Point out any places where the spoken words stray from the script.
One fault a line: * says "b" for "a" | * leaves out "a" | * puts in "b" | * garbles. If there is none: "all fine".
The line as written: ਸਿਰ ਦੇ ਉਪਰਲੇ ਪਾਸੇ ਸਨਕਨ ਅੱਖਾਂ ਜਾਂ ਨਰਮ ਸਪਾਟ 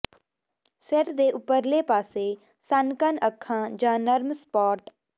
all fine